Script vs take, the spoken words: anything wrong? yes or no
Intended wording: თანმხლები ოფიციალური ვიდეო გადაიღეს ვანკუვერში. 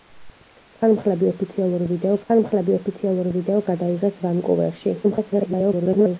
yes